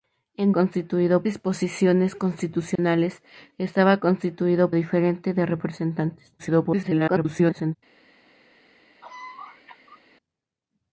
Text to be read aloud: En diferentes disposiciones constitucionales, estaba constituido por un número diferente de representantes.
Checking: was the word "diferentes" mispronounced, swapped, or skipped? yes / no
yes